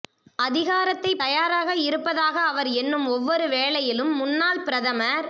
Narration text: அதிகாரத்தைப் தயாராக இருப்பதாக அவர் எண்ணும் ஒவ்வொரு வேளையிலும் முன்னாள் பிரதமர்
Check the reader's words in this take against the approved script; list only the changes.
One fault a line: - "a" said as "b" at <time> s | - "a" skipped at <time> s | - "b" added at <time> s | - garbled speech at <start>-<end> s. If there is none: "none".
none